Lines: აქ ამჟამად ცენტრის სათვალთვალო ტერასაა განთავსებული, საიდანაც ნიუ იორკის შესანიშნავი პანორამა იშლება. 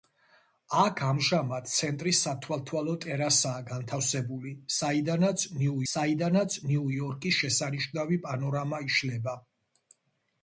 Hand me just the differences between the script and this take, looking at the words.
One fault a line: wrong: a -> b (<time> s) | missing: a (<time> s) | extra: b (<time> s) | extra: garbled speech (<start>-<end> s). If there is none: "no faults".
extra: საიდანაც ნიუ (5.9 s)